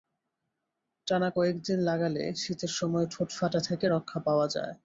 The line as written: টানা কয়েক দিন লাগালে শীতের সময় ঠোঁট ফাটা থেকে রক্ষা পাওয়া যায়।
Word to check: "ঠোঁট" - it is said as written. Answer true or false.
true